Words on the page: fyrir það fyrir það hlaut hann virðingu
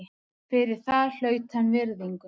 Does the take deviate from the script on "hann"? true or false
false